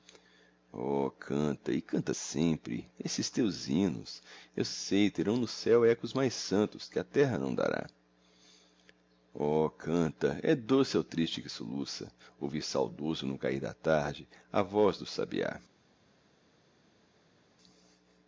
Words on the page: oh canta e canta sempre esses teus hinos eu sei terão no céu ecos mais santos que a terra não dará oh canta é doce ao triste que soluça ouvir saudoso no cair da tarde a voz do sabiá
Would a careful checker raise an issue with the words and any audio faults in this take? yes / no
no